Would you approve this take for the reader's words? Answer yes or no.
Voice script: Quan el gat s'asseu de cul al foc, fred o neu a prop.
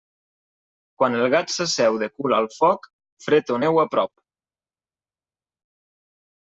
yes